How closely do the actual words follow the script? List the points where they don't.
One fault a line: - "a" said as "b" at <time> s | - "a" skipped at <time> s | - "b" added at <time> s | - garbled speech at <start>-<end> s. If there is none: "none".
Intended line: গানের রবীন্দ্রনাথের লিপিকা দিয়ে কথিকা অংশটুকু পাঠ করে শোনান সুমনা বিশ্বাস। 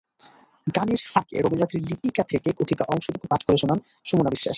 - "ফাঁকে" added at 1.1 s
- "দিয়ে" said as "থেকে" at 2.2 s